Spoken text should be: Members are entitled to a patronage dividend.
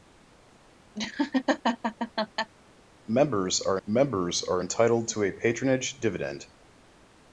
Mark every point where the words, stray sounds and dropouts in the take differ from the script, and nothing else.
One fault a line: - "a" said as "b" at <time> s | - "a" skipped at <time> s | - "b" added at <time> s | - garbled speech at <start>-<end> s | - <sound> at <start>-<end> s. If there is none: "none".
- laugh at 0.9-2.5 s
- "members are" added at 3.9 s